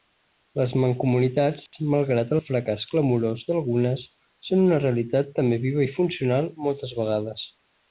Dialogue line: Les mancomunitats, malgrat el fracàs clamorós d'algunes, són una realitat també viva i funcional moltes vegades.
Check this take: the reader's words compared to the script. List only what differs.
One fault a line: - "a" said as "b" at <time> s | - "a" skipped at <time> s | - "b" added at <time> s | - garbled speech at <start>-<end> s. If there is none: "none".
none